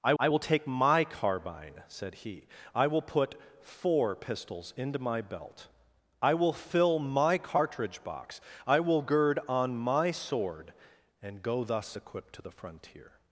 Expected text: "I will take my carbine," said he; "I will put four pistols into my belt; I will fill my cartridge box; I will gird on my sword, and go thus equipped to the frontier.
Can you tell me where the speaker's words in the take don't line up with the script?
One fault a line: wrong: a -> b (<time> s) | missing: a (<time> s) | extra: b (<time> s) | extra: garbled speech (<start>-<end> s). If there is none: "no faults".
extra: I (0.2 s)